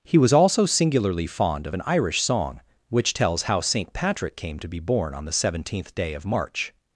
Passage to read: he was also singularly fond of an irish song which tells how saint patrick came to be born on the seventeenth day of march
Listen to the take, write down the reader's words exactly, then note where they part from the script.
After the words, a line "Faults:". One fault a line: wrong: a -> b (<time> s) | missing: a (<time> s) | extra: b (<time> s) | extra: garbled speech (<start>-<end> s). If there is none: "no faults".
he was also singularly fond of an irish song which tells how saint patrick came to be born on the seventeenth day of march
Faults:
no faults